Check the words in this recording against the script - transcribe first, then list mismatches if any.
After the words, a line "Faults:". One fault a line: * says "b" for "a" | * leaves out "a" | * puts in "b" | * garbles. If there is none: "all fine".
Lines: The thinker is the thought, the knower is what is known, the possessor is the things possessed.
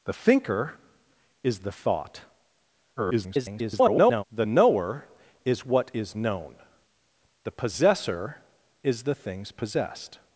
The thinker is the thought, [garbled] the knower is what is known, the possessor is the things possessed.
Faults:
* garbles